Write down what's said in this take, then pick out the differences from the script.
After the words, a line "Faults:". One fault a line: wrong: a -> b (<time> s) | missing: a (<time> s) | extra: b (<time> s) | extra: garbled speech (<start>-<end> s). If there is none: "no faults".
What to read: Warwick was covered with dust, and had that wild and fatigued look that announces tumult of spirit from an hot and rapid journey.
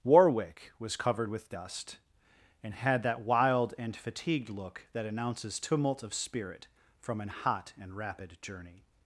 Warwick was covered with dust, and had that wild and fatigued look that announces tumult of spirit from an hot and rapid journey.
Faults:
no faults